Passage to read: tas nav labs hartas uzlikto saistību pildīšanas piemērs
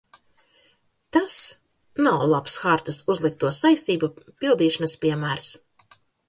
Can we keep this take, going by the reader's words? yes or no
yes